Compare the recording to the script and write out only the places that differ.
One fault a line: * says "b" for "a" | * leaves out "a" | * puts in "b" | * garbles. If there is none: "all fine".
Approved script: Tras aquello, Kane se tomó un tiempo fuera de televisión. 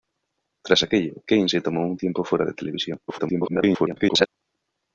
* garbles